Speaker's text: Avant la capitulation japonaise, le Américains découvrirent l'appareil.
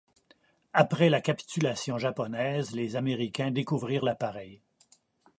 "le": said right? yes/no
no